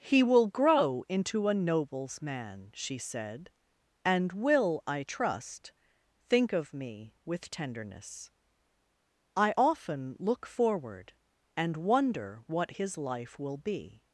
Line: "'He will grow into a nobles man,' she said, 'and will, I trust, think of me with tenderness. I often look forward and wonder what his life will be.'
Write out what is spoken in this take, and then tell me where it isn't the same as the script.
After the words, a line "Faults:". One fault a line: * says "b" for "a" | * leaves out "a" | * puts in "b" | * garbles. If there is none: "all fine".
"'He will grow into a nobles man,' she said, 'and will, I trust, think of me with tenderness. I often look forward and wonder what his life will be.'
Faults:
all fine